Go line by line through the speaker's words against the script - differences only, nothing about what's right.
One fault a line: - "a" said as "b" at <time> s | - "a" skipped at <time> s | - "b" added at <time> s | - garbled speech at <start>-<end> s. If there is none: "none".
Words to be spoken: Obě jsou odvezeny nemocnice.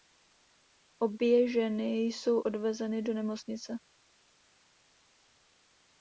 - "ženy" added at 1.5 s
- "do" added at 3.0 s